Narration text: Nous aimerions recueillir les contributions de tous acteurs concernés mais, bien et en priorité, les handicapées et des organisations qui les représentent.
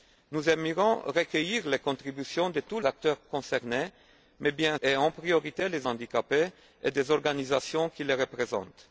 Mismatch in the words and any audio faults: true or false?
false